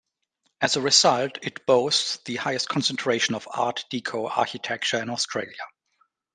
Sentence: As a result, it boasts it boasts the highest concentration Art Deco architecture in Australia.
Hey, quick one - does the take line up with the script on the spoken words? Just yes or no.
no